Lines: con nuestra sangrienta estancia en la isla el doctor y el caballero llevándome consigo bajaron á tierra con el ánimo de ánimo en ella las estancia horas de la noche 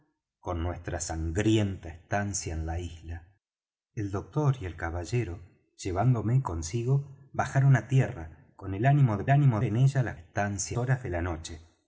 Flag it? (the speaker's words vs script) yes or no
no